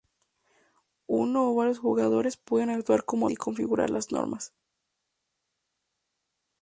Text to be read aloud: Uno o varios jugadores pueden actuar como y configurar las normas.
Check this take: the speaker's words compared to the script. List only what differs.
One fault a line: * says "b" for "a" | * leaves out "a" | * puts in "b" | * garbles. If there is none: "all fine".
all fine